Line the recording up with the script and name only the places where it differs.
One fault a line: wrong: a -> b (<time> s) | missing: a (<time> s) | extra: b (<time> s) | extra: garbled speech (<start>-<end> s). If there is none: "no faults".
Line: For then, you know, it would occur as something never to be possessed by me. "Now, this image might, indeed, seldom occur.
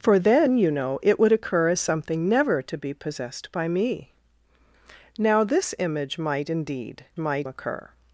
wrong: seldom -> might (7.2 s)